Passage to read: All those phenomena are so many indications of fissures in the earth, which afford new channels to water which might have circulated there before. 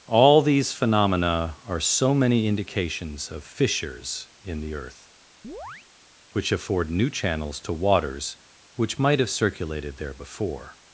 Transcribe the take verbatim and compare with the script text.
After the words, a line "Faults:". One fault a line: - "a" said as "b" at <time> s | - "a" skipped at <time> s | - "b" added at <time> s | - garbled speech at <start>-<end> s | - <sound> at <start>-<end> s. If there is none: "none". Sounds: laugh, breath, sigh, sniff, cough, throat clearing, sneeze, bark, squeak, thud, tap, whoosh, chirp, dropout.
All these phenomena are so many indications of fissures in the earth, which afford new channels to waters which might have circulated there before.
Faults:
- "those" said as "these" at 0.4 s
- chirp at 5.4-5.9 s
- "water" said as "waters" at 7.7 s